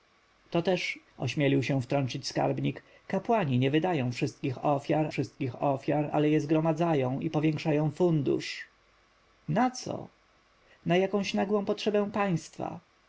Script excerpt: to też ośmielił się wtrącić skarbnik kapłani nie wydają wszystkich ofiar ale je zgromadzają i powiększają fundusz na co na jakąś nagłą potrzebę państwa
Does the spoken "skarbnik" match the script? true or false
true